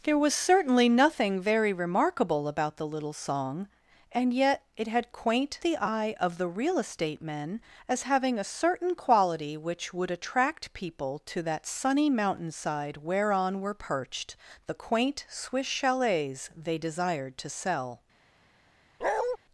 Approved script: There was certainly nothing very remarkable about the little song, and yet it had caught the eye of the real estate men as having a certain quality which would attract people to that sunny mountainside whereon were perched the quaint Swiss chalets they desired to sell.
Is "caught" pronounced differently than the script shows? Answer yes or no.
yes